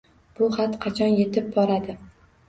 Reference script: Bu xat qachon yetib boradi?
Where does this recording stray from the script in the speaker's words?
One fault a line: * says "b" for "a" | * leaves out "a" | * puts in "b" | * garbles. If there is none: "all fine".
all fine